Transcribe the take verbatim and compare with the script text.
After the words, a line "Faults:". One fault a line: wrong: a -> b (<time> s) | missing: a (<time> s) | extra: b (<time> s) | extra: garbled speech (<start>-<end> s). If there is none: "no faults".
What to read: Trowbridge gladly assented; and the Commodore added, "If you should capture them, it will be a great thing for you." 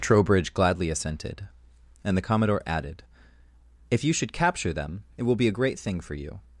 Trowbridge gladly assented; and the Commodore added, "If you should capture them, it will be a great thing for you."
Faults:
no faults